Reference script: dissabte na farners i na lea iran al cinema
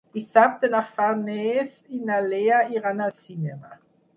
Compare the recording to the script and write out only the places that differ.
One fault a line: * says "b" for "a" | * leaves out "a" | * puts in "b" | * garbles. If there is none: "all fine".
all fine